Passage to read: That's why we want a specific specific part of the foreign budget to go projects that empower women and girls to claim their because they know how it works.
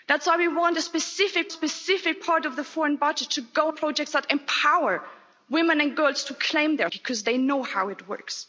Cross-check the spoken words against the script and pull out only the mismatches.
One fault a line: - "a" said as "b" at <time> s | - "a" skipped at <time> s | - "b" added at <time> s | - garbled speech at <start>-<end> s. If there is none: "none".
none